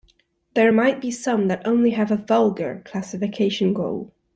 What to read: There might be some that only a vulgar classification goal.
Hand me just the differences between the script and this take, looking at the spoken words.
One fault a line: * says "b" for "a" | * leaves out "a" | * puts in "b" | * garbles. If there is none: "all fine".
* puts in "have"